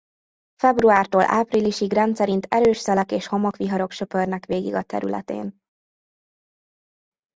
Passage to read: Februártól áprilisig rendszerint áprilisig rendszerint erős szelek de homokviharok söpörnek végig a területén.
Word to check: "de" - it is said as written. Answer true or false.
false